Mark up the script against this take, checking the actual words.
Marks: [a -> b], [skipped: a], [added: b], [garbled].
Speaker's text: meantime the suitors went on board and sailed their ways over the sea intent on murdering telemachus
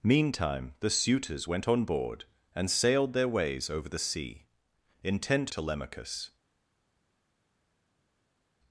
meantime the suitors went on board and sailed their ways over the sea intent [skipped: on murdering] telemachus